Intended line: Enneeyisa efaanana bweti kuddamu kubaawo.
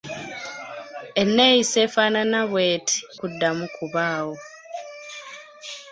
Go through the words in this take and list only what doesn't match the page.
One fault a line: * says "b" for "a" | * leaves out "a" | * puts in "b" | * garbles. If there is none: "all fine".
all fine